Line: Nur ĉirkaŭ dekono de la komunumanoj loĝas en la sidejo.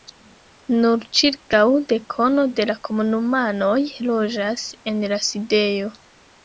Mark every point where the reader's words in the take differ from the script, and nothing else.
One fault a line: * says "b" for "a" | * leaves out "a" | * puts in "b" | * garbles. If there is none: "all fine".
all fine